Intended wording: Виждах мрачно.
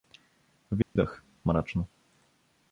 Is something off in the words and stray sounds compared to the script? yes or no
yes